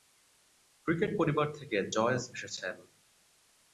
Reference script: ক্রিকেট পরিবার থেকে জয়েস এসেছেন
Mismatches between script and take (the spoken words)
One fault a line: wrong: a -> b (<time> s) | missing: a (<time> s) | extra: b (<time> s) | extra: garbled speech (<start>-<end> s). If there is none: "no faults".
no faults